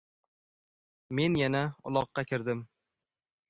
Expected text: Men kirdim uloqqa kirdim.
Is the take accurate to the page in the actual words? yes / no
no